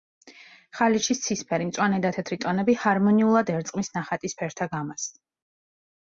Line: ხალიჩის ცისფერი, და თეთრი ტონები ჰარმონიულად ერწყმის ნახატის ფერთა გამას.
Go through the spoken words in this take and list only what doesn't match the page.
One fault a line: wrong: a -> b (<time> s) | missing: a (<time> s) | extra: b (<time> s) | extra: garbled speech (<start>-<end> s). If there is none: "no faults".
extra: მწვანე (1.7 s)